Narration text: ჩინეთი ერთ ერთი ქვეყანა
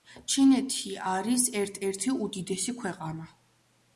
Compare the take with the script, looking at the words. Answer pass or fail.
fail